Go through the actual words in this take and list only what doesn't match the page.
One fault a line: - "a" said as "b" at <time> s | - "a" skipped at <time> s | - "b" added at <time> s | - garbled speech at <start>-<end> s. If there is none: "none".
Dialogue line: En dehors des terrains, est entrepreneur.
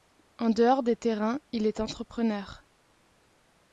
- "il" added at 1.5 s